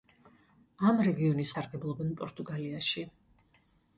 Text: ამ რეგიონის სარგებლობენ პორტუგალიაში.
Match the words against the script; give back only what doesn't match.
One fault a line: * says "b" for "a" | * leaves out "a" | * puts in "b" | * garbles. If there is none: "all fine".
all fine